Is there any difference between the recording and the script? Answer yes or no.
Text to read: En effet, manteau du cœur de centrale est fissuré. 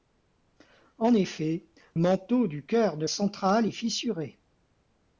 no